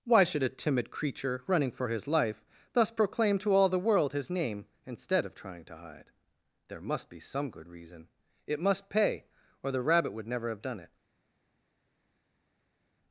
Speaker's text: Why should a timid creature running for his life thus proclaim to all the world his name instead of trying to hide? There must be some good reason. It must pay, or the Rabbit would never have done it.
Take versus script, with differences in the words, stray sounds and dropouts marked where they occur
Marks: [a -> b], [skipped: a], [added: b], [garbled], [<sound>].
Why should a timid creature running for his life thus proclaim to all the world his name instead of trying to hide? There must be some good reason. It must pay, or the Rabbit would never have done it.